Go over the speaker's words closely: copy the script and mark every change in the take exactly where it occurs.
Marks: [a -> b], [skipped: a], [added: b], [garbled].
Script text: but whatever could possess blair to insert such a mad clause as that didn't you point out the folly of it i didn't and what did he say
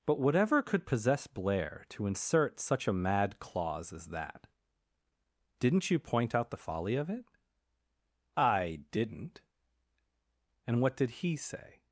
but whatever could possess blair to insert such a mad clause as that didn't you point out the folly of it i didn't and what did he say